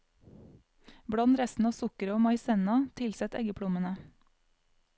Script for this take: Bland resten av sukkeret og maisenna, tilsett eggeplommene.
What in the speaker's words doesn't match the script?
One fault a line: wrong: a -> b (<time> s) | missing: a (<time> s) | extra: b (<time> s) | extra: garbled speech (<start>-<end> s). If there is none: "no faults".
no faults